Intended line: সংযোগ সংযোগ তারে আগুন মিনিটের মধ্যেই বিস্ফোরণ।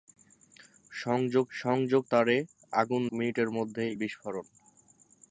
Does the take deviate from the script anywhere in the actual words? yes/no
no